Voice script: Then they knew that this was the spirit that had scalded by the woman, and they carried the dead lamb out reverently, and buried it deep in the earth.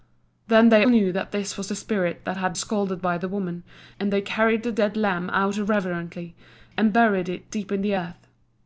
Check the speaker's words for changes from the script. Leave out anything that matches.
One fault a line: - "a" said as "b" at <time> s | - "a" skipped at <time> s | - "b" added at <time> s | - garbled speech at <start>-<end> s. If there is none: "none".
none